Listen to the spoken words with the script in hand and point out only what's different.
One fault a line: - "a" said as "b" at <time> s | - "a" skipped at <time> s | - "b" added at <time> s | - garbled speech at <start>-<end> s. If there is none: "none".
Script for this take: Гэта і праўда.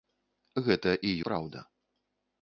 none